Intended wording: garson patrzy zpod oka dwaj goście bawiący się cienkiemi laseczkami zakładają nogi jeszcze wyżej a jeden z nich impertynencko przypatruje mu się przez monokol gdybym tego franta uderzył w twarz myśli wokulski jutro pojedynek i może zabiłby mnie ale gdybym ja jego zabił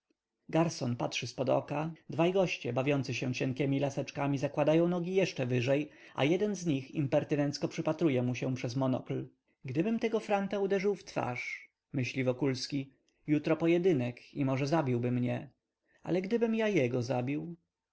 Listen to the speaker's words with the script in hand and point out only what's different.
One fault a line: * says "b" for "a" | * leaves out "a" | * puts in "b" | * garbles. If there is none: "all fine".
all fine